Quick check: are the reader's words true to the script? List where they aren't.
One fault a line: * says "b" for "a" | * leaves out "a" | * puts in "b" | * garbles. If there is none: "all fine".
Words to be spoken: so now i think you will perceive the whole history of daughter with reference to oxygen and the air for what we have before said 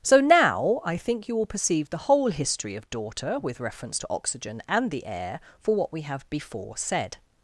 all fine